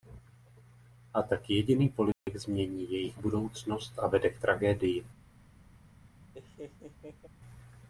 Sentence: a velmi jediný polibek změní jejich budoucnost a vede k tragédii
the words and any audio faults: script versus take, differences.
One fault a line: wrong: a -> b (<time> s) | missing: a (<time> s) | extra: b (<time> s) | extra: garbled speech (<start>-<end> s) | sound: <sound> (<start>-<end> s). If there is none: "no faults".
wrong: velmi -> tak (1.2 s)
sound: dropout (2.1-2.3 s)
sound: laugh (6.3-7.3 s)